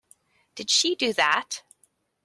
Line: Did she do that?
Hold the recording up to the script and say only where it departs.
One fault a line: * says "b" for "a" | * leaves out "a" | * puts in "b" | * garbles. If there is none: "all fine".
all fine